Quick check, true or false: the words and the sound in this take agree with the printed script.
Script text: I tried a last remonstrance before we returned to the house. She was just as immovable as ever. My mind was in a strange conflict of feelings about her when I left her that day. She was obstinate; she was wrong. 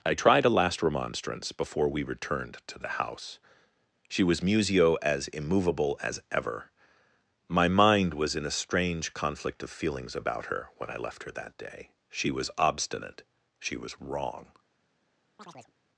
false